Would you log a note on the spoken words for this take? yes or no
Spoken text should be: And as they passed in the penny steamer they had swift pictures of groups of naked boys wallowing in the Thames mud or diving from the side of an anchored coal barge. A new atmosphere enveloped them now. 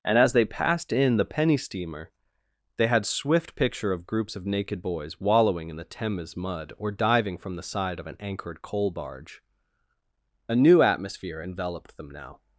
yes